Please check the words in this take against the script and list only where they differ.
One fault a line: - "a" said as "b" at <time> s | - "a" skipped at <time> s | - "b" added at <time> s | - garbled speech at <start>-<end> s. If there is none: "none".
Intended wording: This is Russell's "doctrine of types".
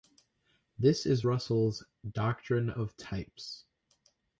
none